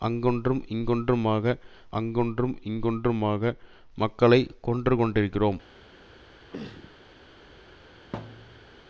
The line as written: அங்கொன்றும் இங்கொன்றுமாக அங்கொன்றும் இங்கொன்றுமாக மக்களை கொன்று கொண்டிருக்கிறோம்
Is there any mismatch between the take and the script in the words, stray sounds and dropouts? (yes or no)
yes